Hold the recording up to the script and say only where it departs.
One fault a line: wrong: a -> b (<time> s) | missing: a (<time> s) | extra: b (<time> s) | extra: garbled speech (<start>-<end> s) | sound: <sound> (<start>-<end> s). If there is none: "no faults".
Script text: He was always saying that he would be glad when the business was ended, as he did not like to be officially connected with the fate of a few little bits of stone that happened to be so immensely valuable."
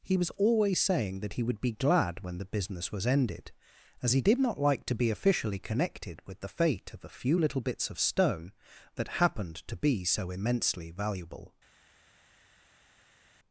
no faults